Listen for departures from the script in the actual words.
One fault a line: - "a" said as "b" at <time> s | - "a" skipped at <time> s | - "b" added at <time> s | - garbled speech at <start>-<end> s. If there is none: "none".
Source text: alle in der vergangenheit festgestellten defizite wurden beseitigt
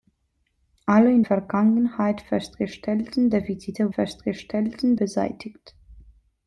- "der" skipped at 1.2 s
- "wurden" said as "festgestellten" at 3.9 s